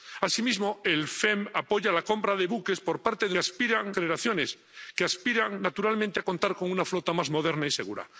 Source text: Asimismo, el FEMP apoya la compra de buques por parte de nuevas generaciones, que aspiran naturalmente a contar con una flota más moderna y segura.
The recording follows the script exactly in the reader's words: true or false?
false